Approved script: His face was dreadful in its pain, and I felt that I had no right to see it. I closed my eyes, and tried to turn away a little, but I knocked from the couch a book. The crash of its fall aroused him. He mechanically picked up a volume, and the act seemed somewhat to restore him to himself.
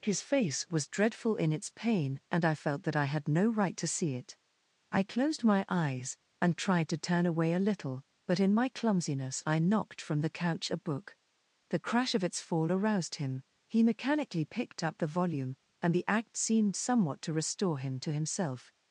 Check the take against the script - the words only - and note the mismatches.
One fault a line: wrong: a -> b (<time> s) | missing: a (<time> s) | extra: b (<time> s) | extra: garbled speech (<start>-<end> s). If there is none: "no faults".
extra: in my clumsiness (8.4 s)
wrong: a -> the (15.0 s)